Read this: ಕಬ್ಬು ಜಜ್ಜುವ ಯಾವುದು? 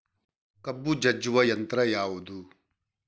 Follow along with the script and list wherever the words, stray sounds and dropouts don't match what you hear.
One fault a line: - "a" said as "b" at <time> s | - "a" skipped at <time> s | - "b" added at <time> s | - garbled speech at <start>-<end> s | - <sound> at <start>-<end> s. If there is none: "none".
- "ಯಂತ್ರ" added at 1.4 s